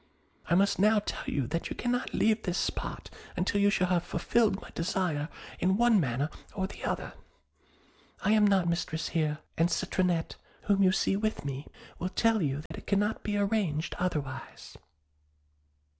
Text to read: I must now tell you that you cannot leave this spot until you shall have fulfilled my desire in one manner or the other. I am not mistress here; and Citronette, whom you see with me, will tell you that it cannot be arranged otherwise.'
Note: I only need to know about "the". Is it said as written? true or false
true